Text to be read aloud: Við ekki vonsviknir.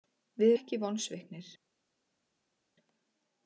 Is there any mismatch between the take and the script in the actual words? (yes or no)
no